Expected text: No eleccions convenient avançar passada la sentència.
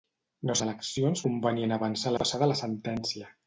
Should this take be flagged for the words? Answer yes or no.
no